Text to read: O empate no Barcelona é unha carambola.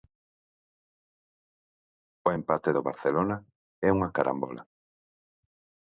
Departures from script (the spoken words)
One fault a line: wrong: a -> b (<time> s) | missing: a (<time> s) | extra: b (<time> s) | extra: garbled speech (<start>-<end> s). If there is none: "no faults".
wrong: no -> do (2.7 s)